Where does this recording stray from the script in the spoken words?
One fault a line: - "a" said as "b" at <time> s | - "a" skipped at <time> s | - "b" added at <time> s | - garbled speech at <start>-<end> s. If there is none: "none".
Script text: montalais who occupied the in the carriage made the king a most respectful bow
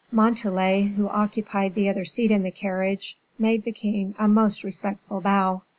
- "other seat" added at 1.9 s